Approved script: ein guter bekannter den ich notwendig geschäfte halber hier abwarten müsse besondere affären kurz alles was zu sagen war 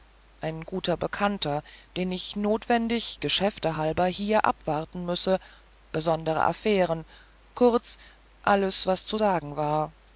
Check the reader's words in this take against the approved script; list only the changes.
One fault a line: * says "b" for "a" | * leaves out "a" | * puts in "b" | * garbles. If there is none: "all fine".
all fine